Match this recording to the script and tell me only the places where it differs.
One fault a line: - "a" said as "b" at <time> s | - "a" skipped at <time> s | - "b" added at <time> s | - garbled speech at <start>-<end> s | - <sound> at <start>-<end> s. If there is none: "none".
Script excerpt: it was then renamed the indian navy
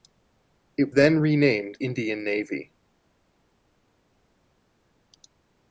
- "was" skipped at 0.9 s
- "the" skipped at 1.8 s